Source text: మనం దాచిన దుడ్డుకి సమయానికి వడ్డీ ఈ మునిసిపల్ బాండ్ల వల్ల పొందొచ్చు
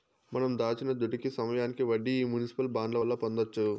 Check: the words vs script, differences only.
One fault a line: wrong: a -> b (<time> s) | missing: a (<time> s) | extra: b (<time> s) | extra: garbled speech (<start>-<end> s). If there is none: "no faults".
no faults